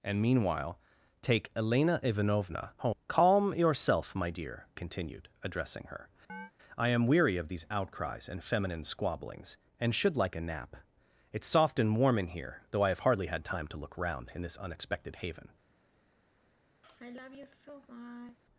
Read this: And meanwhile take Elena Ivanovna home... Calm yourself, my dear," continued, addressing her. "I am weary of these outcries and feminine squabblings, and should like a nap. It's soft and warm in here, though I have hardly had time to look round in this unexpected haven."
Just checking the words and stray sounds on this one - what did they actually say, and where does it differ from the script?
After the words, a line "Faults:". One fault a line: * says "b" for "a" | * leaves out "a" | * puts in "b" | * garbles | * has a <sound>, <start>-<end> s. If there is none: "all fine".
And meanwhile take Elena Ivanovna home... Calm yourself, my dear," continued, addressing her. "I am weary of these outcries and feminine squabblings, and should like a nap. It's soft and warm in here, though I have hardly had time to look round in this unexpected haven."
Faults:
* has a chirp, 6.3-6.5 s
* has a sigh, 16.8-18.4 s